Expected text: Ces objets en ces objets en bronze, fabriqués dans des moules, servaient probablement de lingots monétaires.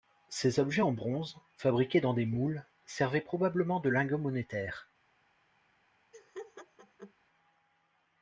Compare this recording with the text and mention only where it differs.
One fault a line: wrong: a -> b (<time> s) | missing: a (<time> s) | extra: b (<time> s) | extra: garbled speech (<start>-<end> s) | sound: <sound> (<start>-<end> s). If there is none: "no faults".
missing: ces objets en (0.9 s)
sound: laugh (6.1-7.1 s)